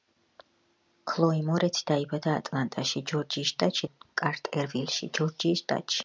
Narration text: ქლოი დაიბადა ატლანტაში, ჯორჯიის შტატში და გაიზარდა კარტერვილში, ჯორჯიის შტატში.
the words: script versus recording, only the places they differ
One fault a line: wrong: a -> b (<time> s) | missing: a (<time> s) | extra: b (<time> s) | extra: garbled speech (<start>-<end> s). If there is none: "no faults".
extra: მორეცი (1.5 s)